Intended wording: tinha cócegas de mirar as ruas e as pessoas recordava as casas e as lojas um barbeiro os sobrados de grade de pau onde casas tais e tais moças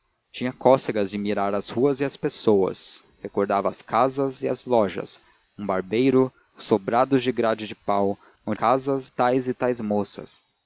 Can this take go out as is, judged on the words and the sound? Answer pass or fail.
pass